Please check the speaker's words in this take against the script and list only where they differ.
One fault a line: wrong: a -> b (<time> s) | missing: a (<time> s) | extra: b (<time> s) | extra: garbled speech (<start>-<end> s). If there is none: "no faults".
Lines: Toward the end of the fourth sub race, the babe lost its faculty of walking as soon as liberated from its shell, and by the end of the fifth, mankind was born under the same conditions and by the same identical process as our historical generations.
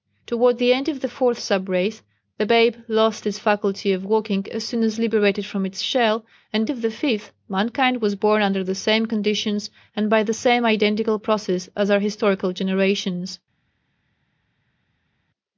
missing: by the end (6.7 s)